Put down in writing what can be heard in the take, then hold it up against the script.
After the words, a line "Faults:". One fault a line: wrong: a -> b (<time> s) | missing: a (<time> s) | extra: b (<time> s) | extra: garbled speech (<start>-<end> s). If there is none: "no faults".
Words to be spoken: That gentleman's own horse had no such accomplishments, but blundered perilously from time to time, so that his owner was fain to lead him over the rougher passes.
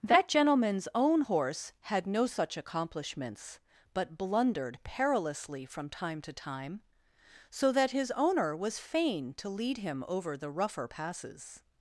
That gentleman's own horse had no such accomplishments, but blundered perilously from time to time, so that his owner was fain to lead him over the rougher passes.
Faults:
no faults